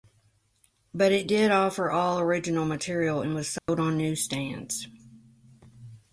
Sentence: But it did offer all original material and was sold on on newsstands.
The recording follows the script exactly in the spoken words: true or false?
false